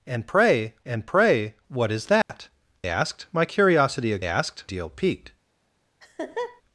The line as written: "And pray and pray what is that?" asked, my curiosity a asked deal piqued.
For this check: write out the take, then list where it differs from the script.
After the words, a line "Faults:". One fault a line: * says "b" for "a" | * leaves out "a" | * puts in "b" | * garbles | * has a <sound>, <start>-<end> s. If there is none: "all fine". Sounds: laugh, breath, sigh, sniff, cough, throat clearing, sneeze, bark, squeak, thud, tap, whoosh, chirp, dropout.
"And pray and pray what is that?" asked, my curiosity a asked deal piqued.
Faults:
* has a dropout, 2.2-2.3 s
* has a laugh, 6.0-6.6 s